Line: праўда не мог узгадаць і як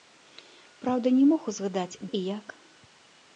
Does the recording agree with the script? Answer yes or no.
yes